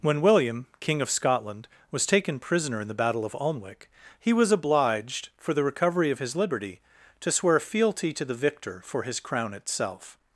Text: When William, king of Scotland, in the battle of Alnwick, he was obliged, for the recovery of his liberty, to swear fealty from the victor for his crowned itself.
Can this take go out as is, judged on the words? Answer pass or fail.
fail